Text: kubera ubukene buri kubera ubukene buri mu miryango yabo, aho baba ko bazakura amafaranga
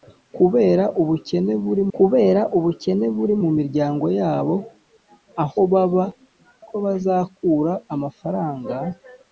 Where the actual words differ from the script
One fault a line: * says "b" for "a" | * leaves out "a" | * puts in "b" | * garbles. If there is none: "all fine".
all fine